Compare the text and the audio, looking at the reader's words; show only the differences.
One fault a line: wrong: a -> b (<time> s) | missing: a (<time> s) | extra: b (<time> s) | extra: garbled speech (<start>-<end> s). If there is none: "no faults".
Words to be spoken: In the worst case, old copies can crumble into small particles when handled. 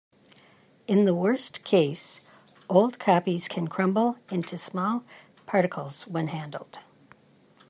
no faults